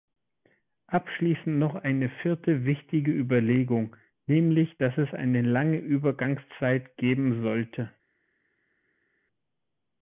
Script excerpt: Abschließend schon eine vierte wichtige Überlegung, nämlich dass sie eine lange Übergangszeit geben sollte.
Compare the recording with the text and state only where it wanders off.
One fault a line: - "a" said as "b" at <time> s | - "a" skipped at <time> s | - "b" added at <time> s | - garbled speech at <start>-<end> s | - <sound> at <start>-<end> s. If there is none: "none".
- "schon" said as "noch" at 1.6 s
- "sie" said as "es" at 5.0 s